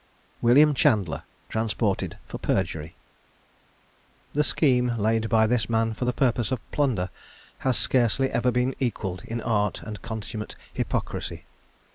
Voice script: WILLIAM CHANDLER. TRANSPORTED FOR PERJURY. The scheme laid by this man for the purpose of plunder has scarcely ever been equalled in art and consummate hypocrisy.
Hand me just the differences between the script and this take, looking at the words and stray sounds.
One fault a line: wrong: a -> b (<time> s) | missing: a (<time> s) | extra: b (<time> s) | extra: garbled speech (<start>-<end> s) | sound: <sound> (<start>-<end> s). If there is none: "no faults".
no faults